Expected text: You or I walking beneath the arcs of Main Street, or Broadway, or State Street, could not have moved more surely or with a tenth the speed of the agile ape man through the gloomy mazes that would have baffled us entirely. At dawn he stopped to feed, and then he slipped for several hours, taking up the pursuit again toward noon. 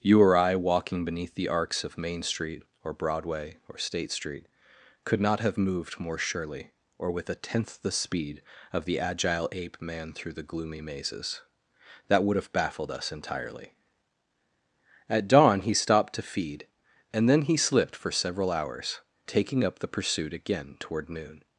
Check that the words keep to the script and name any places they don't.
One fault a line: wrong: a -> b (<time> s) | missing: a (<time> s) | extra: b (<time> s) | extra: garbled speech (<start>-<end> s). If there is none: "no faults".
no faults